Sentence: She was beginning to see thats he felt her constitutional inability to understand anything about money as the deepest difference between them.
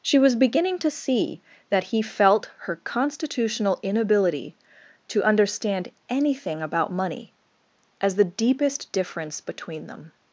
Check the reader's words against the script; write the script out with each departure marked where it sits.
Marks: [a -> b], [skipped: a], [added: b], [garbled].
She was beginning to see [thats -> that] he felt her constitutional inability to understand anything about money as the deepest difference between them.